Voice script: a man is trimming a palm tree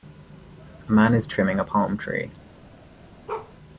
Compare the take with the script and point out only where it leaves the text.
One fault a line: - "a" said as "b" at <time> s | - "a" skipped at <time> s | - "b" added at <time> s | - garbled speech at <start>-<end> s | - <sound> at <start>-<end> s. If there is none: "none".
- bark at 3.3-3.5 s